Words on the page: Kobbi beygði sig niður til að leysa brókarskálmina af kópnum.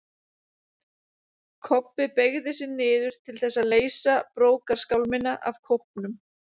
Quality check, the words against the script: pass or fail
fail